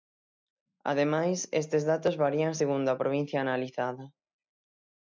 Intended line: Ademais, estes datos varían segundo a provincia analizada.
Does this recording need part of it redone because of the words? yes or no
no